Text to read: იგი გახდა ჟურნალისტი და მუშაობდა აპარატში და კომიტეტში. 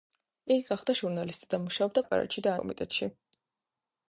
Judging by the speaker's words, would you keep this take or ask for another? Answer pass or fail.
pass